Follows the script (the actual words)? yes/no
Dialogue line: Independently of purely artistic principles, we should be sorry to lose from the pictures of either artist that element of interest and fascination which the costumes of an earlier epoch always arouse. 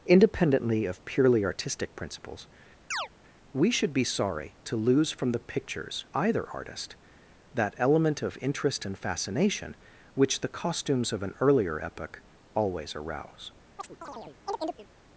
no